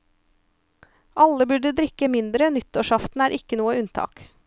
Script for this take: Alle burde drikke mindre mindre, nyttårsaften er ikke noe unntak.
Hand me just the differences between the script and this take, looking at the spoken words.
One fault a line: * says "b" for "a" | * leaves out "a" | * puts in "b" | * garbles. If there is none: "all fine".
* leaves out "mindre"